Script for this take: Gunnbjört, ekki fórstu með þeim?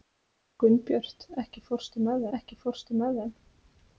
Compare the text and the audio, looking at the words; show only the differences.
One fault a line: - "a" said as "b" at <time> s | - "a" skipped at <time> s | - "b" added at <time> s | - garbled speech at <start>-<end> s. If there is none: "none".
- "ekki fórstu með" added at 2.4 s